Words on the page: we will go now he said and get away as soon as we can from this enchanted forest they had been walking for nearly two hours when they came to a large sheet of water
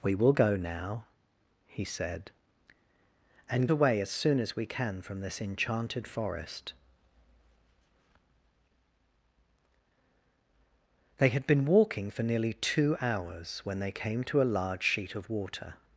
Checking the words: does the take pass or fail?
fail